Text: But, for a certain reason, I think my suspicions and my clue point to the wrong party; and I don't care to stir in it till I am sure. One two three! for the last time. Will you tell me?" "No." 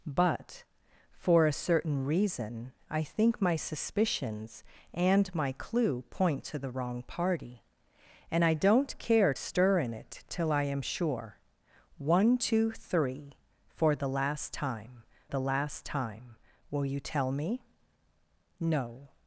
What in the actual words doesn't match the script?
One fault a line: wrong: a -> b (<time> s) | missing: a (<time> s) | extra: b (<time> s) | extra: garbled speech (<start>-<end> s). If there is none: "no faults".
missing: to (9.3 s)
extra: the last time (15.3 s)